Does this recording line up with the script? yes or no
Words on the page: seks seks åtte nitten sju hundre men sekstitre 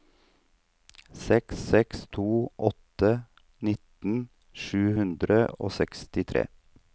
no